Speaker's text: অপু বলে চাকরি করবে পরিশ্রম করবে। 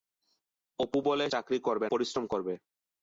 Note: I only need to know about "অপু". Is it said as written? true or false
true